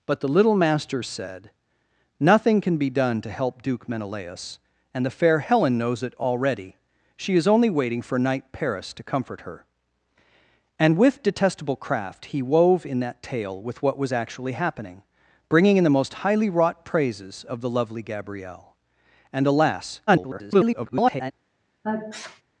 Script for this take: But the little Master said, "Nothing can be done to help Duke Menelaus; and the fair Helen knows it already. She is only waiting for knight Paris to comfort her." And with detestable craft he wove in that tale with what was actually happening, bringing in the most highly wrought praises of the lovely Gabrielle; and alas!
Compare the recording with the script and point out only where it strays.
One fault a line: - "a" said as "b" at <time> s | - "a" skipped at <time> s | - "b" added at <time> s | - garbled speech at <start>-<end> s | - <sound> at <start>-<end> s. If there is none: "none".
- garbled speech at 20.1-21.3 s
- sneeze at 21.8-22.4 s